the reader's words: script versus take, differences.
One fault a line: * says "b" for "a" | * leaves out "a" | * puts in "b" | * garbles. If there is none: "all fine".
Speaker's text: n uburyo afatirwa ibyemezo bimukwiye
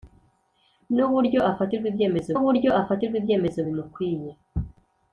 * puts in "uburyo afatirwa ibyemezo"